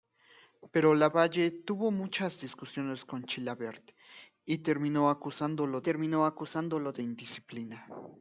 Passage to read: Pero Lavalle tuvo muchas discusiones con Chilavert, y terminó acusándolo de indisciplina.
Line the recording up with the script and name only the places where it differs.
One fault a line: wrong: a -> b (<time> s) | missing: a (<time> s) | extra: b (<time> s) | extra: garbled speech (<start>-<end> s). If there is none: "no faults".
extra: terminó acusándolo (5.8 s)